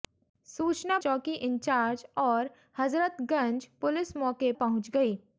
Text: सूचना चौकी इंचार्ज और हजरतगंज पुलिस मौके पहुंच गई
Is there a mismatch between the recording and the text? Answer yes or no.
no